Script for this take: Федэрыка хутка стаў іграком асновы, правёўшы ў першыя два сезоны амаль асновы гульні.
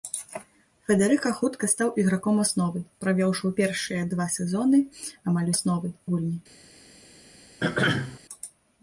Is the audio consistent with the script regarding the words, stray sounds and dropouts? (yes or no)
no